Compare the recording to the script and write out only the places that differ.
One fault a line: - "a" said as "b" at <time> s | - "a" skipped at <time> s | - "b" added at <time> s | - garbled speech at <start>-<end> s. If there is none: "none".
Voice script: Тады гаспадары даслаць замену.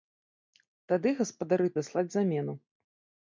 none